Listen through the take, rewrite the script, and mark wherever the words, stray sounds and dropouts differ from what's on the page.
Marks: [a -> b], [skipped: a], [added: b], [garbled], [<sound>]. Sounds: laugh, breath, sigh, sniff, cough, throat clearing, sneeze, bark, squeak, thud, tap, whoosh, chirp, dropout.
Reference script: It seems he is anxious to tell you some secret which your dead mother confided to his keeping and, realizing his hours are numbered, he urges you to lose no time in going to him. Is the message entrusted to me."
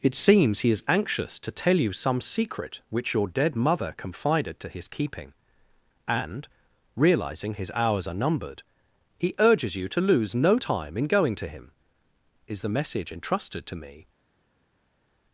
It seems he is anxious to tell you some secret which your dead mother confided to his keeping and, realizing his hours are numbered, he urges you to lose no time in going to him. Is the message entrusted to me."